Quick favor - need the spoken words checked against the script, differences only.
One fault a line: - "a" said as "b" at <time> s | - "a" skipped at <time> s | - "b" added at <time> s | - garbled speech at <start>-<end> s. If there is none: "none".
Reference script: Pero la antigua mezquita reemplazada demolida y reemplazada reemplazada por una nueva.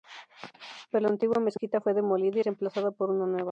- "reemplazada" said as "fue" at 1.8 s
- "reemplazada" skipped at 2.9 s